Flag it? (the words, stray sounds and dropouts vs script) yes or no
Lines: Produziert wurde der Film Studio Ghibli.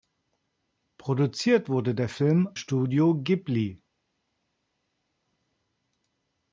no